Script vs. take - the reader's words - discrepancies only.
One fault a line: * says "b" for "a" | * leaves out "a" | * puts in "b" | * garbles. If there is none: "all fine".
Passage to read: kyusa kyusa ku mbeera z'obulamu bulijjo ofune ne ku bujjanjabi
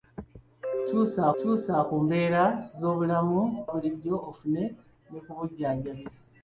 all fine